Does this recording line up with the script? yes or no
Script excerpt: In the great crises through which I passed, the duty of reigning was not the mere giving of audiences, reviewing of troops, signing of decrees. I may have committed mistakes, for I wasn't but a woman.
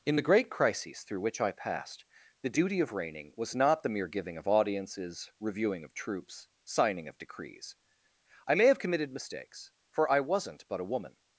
yes